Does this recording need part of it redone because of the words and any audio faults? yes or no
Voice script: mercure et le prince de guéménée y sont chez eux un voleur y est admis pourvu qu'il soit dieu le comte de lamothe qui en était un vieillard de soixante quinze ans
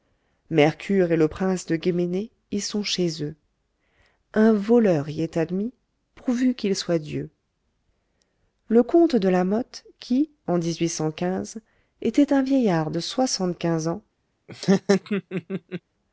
yes